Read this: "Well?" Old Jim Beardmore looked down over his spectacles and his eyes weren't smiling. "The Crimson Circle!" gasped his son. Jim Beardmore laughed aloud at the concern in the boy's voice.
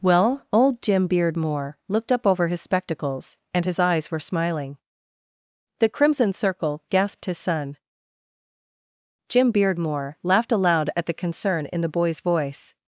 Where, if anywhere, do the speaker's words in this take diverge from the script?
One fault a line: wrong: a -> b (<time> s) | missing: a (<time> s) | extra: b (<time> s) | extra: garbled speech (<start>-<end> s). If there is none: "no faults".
wrong: down -> up (2.1 s)
wrong: weren't -> were (4.1 s)